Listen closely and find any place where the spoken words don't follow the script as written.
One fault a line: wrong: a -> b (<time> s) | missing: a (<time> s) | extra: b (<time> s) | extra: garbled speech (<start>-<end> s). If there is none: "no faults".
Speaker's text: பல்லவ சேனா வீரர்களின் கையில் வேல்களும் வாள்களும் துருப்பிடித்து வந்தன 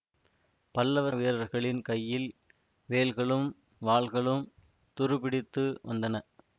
missing: சேனா (1.1 s)